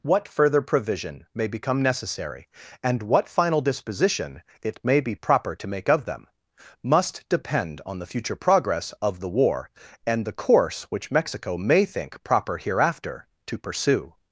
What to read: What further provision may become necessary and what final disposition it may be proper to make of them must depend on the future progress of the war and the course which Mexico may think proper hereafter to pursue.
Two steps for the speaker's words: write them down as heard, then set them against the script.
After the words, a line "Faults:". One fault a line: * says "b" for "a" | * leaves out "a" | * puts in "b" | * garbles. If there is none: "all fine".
What further provision may become necessary and what final disposition it may be proper to make of them must depend on the future progress of the war and the course which Mexico may think proper hereafter to pursue.
Faults:
all fine